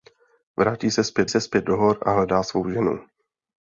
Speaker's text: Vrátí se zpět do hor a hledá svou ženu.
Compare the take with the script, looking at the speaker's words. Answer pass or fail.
fail